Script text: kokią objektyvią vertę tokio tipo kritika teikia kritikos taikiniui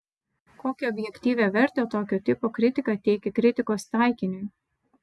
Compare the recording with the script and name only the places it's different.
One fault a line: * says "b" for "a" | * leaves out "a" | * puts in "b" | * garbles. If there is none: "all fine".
all fine